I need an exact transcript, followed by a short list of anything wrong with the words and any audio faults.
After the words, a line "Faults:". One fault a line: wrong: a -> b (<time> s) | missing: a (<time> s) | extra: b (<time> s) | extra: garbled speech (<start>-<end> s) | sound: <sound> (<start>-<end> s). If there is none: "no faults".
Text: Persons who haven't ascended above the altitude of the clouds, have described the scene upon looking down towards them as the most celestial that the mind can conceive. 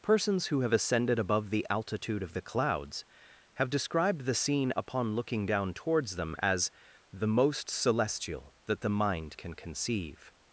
Persons who have ascended above the altitude of the clouds, have described the scene upon looking down towards them as the most celestial that the mind can conceive.
Faults:
wrong: haven't -> have (0.6 s)